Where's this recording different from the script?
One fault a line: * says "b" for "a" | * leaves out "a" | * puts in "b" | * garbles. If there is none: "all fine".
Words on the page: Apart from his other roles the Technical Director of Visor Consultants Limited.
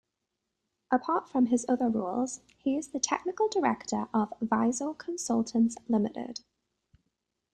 * puts in "he is"